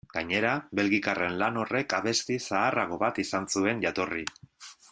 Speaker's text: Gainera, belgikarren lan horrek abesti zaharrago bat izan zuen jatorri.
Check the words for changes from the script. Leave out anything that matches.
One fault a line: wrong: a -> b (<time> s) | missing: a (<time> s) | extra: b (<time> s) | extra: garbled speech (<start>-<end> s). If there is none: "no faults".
no faults